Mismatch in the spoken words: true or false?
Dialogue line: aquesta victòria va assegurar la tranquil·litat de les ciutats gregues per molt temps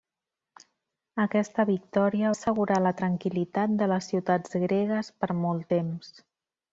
true